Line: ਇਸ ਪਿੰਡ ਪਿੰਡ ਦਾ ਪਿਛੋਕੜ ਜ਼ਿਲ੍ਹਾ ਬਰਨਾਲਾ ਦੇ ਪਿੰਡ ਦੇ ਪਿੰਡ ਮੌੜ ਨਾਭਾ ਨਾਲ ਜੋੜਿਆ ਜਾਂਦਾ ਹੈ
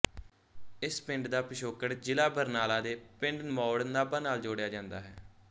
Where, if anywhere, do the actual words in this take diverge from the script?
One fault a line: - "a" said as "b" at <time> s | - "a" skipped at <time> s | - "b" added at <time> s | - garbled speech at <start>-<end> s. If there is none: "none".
- "ਪਿੰਡ" skipped at 1.3 s
- "ਦੇ ਪਿੰਡ" skipped at 3.4 s